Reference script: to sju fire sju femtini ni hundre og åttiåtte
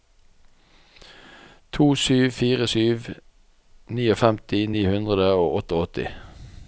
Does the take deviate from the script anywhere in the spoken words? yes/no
no